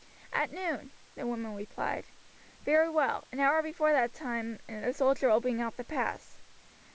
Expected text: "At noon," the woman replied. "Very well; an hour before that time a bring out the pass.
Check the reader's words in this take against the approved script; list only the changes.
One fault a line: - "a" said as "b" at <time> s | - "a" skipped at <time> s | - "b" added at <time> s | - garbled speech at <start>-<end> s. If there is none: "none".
- "soldier will" added at 4.9 s